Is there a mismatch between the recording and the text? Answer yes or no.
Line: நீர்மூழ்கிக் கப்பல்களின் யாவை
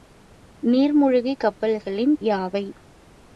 no